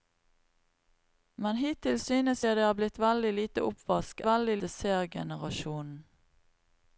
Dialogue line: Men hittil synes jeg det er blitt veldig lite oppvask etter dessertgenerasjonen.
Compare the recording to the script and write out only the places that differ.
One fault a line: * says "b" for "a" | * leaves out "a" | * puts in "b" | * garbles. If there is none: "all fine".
* says "veldig" for "etter"